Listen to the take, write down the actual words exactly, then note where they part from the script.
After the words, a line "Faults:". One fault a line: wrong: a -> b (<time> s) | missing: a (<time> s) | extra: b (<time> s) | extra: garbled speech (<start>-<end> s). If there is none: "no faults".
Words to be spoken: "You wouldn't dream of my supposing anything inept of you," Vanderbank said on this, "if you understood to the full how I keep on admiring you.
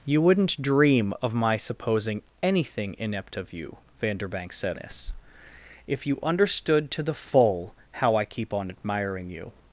"You wouldn't dream of my supposing anything inept of you," Vanderbank said this, "if you understood to the full how I keep on admiring you.
Faults:
missing: on (4.8 s)